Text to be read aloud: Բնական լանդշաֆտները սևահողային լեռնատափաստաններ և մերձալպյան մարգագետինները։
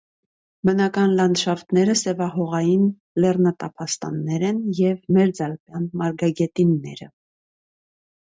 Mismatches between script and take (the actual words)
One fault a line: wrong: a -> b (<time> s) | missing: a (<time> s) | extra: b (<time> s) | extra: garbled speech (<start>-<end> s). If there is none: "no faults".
extra: են (4.5 s)